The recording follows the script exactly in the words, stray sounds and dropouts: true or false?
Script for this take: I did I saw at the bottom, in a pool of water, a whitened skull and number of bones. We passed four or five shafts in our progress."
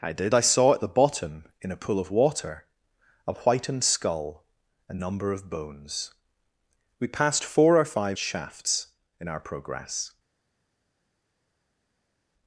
true